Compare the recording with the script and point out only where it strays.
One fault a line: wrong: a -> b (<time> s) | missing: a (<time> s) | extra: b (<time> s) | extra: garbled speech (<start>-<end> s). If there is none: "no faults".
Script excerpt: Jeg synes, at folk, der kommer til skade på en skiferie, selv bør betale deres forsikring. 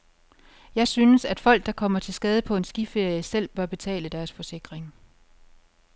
no faults